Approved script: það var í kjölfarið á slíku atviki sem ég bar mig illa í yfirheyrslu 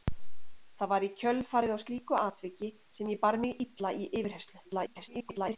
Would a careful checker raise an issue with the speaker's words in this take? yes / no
yes